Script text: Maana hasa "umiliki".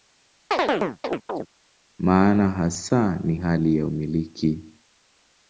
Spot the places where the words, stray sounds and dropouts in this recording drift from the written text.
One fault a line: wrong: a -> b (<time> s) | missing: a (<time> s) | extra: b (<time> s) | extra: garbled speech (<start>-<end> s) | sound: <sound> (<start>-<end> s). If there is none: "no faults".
sound: chirp (0.5-1.5 s)
extra: ni hali ya (3.2 s)